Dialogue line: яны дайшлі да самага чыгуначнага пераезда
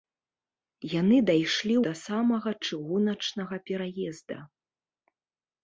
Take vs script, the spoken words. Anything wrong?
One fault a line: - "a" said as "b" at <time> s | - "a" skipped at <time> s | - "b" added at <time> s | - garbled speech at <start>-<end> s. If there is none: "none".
none